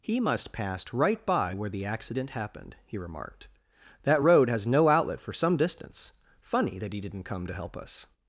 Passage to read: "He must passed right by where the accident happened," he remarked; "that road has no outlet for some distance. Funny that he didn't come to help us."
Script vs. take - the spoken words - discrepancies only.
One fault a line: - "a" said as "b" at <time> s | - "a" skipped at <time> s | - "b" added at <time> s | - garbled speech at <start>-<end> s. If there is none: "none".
none